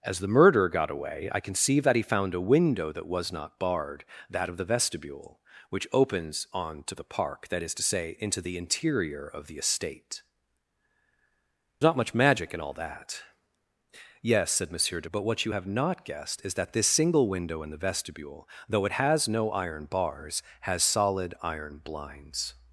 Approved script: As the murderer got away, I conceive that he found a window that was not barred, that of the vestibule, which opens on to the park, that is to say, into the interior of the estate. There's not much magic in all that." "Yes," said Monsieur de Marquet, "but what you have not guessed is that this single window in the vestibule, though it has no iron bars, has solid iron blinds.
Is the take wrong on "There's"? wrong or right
wrong